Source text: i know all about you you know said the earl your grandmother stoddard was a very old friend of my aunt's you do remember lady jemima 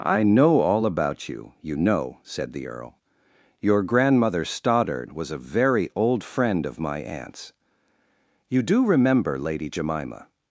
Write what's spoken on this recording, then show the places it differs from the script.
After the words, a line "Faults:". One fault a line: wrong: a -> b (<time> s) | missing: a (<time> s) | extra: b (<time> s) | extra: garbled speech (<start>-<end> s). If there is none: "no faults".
i know all about you you know said the earl your grandmother stoddard was a very old friend of my aunt's you do remember lady jemima
Faults:
no faults